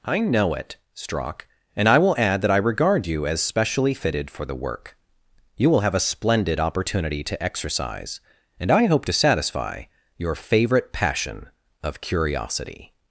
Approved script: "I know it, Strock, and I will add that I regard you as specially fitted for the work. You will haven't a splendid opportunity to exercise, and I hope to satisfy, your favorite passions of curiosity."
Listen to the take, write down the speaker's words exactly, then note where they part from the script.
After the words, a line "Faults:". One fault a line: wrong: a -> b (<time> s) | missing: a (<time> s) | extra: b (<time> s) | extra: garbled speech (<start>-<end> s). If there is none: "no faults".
"I know it, Strock, and I will add that I regard you as specially fitted for the work. You will have a splendid opportunity to exercise, and I hope to satisfy, your favorite passion of curiosity."
Faults:
wrong: haven't -> have (5.8 s)
wrong: passions -> passion (10.9 s)